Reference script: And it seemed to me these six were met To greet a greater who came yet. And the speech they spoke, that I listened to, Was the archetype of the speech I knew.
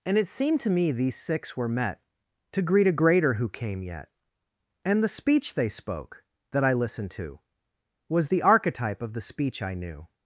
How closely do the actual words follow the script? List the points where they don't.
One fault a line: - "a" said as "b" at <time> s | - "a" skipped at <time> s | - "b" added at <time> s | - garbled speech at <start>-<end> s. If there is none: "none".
none